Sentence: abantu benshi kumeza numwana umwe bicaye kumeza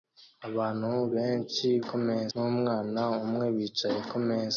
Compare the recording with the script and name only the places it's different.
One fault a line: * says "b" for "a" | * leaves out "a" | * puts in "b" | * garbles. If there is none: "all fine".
all fine